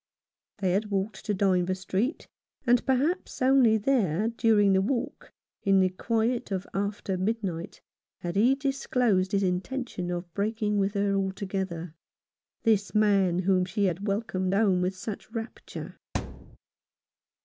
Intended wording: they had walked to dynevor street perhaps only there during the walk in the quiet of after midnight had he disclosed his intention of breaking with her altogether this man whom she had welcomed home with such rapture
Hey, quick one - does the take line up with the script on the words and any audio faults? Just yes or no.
no